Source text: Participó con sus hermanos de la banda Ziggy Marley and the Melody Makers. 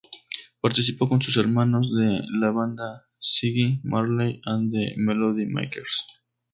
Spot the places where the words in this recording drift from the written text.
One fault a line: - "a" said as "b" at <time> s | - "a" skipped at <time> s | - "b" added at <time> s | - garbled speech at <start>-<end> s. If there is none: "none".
none